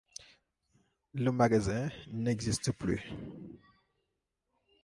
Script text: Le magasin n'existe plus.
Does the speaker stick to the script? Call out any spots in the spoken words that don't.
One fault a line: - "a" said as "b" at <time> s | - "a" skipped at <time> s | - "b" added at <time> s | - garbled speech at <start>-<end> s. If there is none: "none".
none